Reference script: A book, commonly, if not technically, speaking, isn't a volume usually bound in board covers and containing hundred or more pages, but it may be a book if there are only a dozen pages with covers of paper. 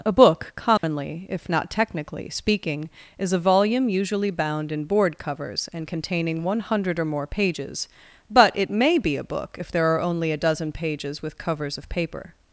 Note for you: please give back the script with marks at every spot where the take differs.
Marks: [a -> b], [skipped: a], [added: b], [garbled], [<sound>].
A book, commonly, [dropout] if not technically, speaking, [isn't -> is] a volume usually bound in board covers and containing [added: one] hundred or more pages, but it may be a book if there are only a dozen pages with covers of paper.